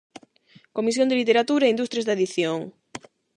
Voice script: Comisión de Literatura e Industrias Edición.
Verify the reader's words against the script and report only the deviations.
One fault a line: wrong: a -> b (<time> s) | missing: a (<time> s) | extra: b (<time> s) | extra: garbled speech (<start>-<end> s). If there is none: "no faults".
extra: da (2.0 s)